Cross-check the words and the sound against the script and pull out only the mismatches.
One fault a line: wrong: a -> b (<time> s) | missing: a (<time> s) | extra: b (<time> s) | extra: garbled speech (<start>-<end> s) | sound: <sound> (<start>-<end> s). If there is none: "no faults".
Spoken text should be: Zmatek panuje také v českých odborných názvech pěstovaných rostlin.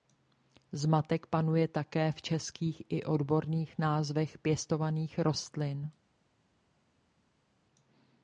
extra: i (2.9 s)